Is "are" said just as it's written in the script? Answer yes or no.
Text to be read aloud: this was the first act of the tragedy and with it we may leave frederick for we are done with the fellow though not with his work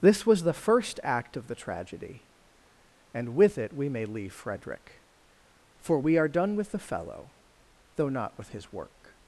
yes